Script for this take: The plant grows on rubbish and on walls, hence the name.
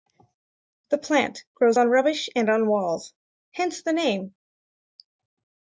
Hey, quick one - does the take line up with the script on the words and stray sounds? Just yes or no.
yes